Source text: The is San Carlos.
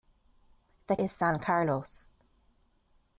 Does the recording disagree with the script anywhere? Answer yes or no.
no